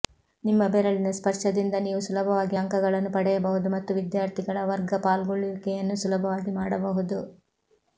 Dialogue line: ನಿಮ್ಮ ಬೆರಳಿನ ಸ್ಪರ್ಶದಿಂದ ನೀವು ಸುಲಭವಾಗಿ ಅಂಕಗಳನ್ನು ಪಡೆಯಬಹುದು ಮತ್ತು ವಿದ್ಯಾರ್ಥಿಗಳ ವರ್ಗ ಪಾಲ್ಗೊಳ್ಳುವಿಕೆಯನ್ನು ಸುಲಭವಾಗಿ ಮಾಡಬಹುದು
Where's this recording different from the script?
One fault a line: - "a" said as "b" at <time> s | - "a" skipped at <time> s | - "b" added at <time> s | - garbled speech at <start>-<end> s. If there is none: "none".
none